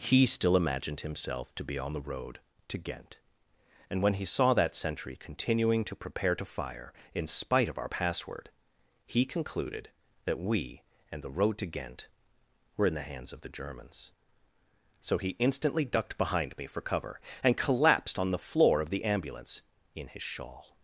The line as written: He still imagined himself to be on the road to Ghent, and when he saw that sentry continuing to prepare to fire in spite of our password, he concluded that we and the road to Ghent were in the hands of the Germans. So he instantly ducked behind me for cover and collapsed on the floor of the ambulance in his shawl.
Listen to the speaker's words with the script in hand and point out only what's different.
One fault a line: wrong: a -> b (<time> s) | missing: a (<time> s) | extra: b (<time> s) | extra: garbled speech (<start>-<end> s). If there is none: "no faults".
no faults